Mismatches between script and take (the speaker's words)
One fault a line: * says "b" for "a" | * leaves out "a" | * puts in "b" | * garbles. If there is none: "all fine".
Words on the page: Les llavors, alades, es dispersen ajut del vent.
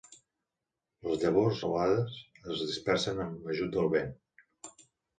* puts in "amb"